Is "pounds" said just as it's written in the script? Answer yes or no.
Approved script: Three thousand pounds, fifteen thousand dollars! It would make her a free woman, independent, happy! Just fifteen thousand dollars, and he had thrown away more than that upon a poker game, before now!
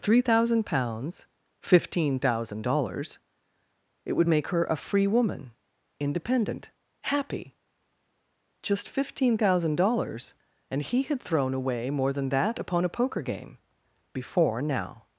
yes